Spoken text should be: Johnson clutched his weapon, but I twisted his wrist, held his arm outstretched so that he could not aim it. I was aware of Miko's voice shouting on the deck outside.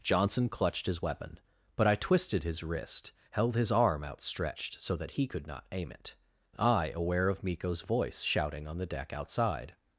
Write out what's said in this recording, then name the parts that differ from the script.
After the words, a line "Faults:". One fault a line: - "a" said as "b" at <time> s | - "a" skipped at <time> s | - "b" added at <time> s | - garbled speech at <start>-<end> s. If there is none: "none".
Johnson clutched his weapon, but I twisted his wrist, held his arm outstretched so that he could not aim it. I aware of Miko's voice shouting on the deck outside.
Faults:
- "was" skipped at 6.9 s